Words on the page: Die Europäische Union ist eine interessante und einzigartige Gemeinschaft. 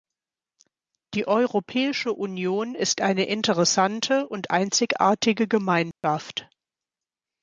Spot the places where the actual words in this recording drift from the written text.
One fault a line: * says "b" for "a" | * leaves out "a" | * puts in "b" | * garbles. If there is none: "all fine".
all fine